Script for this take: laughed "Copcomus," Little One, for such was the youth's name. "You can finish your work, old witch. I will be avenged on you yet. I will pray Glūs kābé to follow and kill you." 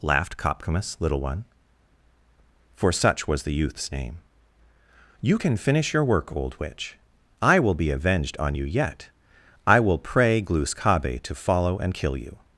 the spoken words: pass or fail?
pass